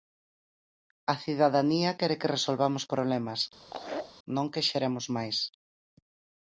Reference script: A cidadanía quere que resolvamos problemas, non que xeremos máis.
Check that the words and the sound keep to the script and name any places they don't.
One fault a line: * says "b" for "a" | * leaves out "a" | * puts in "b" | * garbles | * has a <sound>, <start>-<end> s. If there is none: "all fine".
* has a laugh, 3.6-4.1 s